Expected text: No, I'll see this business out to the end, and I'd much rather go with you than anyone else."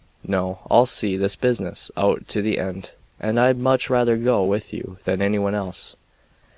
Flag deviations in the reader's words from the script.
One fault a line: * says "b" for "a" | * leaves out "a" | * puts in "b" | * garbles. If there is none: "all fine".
all fine